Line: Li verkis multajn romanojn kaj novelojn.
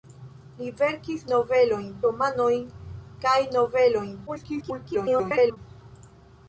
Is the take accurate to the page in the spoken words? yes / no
no